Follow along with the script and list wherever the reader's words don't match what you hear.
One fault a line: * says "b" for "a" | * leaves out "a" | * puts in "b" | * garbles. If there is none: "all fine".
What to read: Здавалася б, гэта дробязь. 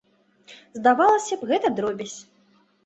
all fine